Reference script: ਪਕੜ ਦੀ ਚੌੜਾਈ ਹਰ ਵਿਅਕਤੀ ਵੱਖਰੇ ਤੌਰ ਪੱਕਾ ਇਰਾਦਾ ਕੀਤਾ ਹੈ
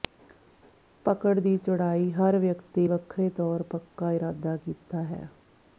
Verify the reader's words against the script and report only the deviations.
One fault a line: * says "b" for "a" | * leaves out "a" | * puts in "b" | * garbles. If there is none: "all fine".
all fine